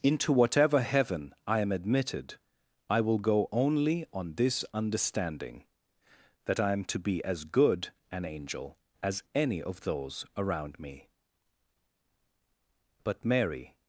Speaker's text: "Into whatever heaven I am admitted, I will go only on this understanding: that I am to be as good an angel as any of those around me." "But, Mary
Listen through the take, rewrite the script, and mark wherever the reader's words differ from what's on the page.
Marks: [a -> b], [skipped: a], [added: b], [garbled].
"Into whatever heaven I am admitted, I will go only on this understanding: that I am to be as good an angel as any of those around me." "But, Mary